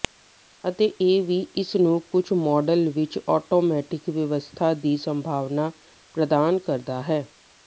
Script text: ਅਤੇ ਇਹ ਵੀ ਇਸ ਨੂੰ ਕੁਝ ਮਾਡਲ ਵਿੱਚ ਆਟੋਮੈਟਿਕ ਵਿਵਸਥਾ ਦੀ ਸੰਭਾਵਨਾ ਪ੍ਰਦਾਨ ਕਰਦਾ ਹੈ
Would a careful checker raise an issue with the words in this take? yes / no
no